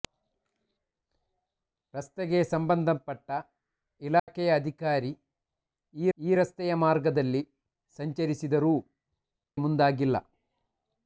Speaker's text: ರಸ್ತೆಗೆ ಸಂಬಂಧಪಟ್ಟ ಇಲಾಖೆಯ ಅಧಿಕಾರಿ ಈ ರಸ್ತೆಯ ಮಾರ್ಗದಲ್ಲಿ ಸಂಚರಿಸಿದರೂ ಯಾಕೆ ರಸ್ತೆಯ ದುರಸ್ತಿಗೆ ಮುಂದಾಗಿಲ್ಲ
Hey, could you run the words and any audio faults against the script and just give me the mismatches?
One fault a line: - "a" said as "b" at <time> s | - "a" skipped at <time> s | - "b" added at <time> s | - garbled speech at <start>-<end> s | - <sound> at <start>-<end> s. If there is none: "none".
- dropout at 4.2-4.3 s
- "ಈ" added at 6.2 s
- "ಯಾಕೆ ರಸ್ತೆಯ ದುರಸ್ತಿಗೆ" skipped at 8.7 s